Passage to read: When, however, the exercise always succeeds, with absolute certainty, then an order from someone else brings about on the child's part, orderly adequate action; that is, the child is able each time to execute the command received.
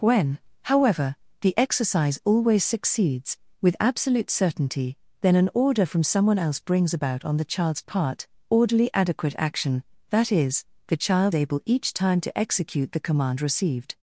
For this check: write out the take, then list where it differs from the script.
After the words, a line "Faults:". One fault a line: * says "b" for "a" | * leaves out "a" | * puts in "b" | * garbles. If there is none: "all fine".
When, however, the exercise always succeeds, with absolute certainty, then an order from someone else brings about on the child's part, orderly adequate action; that is, the child able each time to execute the command received.
Faults:
* leaves out "is"